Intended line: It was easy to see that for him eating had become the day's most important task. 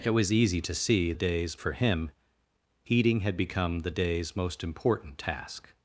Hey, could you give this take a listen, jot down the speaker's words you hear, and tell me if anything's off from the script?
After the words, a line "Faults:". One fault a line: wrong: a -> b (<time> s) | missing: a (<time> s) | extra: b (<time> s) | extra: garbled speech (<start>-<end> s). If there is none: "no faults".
It was easy to see day's for him eating had become the day's most important task.
Faults:
wrong: that -> day's (1.1 s)